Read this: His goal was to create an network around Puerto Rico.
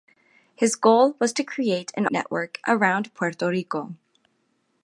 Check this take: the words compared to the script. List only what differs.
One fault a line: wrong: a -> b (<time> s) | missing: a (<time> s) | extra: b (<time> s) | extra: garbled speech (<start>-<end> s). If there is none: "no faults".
no faults